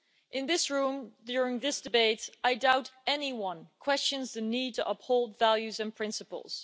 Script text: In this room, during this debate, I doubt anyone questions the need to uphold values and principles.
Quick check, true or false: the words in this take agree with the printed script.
true